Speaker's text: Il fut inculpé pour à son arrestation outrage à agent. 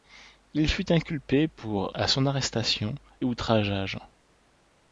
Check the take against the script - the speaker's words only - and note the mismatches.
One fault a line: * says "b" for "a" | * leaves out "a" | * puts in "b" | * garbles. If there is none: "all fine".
all fine